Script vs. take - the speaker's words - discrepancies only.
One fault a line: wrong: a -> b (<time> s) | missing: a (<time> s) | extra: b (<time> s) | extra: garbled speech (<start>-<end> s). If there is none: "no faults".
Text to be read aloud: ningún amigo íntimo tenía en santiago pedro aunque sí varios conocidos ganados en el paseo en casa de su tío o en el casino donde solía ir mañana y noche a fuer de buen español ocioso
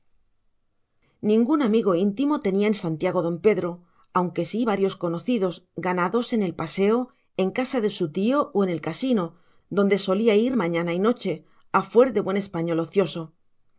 extra: don (3.3 s)